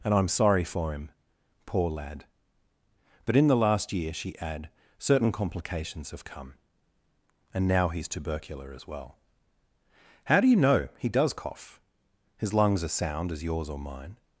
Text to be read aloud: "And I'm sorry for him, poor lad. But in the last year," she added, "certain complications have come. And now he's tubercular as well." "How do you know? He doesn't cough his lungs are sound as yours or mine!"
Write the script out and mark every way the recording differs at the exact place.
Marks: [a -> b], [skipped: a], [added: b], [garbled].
"And I'm sorry for him, poor lad. But in the last year," she [added, -> add] "certain complications have come. And now he's tubercular as well." "How do you know? He [doesn't -> does] cough his lungs are sound as yours or mine!"